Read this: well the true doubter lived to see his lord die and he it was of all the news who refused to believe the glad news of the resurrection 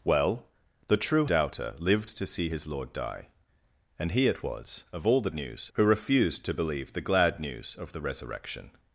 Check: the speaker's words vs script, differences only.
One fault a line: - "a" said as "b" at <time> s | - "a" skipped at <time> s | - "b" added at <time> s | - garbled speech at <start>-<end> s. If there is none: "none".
none